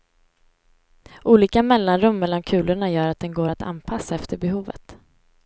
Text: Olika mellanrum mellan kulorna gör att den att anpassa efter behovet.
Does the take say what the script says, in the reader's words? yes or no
no